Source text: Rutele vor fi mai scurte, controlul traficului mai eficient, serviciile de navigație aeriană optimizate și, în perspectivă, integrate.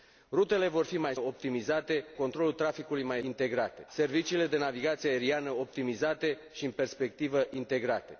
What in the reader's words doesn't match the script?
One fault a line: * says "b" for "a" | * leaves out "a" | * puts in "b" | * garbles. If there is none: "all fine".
* says "optimizate" for "scurte"
* says "integrate" for "eficient"